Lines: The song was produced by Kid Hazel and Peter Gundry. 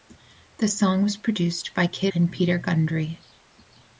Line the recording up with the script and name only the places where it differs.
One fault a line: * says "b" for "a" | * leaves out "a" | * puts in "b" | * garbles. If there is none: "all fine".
* leaves out "Hazel"